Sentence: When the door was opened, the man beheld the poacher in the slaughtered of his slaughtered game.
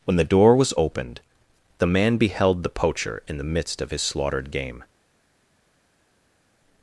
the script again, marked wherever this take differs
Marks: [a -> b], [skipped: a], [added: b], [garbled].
When the door was opened, the man beheld the poacher in the [slaughtered -> midst] of his slaughtered game.